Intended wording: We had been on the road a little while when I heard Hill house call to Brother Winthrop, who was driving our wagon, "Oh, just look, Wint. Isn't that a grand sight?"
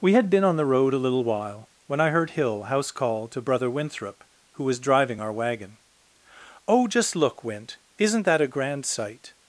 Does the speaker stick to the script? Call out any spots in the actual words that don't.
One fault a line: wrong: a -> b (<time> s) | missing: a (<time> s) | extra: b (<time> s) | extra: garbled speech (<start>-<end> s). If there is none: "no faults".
no faults